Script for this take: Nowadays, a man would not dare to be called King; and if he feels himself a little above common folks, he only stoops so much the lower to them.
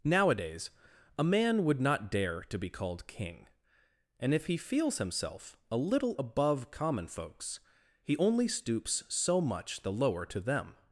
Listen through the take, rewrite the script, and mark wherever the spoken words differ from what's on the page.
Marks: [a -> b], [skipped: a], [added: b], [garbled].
Nowadays, a man would not dare to be called King; and if he feels himself a little above common folks, he only stoops so much the lower to them.